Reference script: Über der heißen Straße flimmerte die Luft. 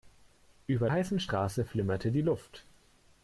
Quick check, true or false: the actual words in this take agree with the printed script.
false